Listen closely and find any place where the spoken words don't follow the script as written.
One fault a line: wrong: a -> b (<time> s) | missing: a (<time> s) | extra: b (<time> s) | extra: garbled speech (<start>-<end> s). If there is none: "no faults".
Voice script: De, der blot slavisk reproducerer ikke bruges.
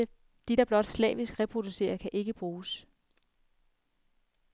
extra: kan (1.9 s)